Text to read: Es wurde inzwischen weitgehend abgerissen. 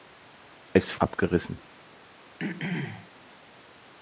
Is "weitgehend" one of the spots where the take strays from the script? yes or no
yes